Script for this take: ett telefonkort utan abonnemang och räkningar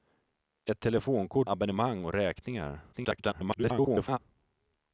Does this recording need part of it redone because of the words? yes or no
yes